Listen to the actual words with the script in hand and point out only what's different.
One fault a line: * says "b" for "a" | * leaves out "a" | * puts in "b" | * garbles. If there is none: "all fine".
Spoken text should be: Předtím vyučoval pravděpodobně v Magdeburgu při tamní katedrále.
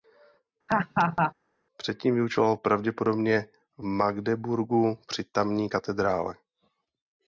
all fine